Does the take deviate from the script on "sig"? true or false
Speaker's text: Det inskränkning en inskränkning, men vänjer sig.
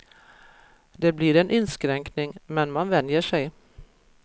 false